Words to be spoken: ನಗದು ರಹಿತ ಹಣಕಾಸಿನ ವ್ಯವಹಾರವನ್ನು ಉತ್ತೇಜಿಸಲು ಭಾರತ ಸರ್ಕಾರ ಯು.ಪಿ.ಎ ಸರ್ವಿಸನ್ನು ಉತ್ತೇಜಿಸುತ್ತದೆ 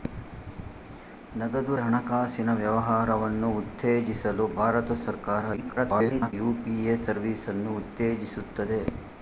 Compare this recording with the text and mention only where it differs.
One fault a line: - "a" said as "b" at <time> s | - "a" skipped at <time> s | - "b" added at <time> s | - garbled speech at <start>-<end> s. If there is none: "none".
- "ರಹಿತ" skipped at 1.7 s
- garbled speech at 5.6-6.3 s